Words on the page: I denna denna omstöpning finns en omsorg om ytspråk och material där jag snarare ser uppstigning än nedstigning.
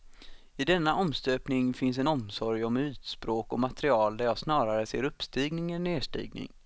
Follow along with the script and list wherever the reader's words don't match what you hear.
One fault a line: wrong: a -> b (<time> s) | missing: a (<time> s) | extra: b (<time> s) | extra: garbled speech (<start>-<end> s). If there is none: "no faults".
missing: denna (0.9 s)